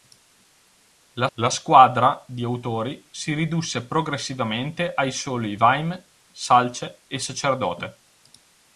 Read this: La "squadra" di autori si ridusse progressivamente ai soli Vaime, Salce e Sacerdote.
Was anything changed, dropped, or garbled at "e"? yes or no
no